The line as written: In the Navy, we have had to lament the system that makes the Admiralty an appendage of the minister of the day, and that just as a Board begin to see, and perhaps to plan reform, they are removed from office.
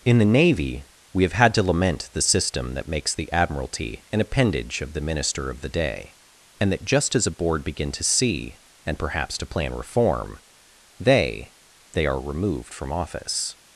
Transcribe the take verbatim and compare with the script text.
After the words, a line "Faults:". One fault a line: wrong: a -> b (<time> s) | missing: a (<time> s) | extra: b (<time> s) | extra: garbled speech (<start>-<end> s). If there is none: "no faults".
In the Navy, we have had to lament the system that makes the Admiralty an appendage of the minister of the day, and that just as a Board begin to see, and perhaps to plan reform, they they are removed from office.
Faults:
extra: they (11.9 s)